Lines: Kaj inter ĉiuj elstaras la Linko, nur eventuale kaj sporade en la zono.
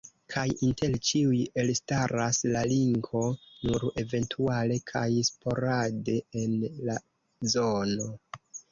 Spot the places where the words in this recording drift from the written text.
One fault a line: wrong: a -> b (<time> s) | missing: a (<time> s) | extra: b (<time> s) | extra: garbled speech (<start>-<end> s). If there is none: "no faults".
no faults